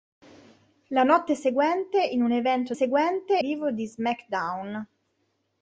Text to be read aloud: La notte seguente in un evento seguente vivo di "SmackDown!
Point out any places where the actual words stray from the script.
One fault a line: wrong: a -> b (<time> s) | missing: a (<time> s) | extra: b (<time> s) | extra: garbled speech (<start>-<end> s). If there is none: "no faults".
no faults